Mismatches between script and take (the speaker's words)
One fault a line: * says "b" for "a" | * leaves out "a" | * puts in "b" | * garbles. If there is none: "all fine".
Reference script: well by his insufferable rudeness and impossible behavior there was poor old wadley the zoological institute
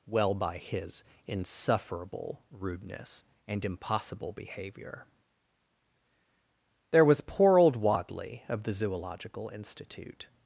* puts in "of"